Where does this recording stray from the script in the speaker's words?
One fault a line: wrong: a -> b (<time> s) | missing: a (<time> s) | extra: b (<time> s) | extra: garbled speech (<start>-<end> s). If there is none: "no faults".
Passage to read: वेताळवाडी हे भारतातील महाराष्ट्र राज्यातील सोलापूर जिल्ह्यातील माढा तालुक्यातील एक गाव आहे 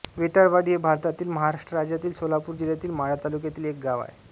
no faults